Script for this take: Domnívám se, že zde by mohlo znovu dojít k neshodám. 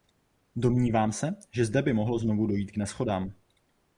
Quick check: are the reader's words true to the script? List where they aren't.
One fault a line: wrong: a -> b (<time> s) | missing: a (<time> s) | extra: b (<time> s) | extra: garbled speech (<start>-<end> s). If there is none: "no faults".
no faults